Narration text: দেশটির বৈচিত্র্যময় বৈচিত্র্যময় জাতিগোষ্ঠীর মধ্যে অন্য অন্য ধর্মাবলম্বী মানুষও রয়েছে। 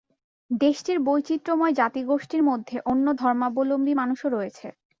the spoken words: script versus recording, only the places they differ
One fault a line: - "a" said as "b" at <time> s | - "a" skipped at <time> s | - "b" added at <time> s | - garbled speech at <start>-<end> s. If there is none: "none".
- "বৈচিত্র্যময়" skipped at 1.7 s
- "অন্য" skipped at 3.0 s